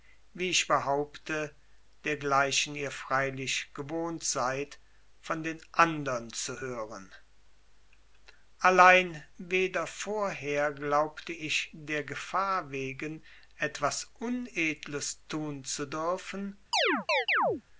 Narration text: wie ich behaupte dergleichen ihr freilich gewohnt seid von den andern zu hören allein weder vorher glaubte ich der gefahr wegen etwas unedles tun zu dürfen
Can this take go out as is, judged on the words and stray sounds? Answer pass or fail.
fail